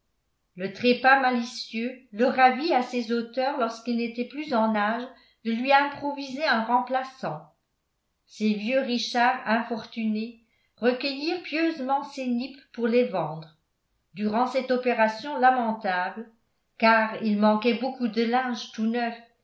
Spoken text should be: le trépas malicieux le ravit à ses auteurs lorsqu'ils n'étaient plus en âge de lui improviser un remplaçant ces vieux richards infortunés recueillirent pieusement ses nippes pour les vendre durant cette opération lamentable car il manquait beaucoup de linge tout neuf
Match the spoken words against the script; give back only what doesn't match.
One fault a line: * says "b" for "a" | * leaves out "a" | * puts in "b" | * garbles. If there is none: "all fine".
all fine